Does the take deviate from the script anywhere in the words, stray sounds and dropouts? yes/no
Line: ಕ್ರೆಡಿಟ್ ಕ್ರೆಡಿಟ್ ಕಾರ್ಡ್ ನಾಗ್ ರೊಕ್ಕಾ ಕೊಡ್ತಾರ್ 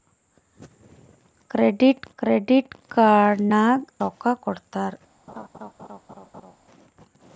yes